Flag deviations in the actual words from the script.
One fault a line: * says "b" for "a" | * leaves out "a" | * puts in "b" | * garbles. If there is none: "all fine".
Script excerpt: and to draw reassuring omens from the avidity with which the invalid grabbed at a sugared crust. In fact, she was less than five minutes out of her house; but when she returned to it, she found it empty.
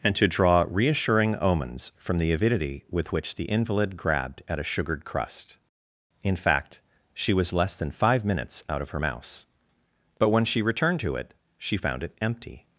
* says "mouse" for "house"